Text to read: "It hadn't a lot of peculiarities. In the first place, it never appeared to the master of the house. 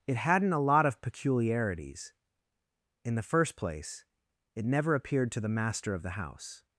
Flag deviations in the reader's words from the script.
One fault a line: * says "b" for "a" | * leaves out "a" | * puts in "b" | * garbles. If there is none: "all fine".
all fine